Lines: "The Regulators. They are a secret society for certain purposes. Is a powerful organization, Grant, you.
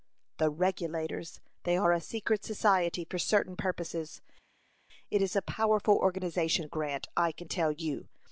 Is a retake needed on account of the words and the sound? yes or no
yes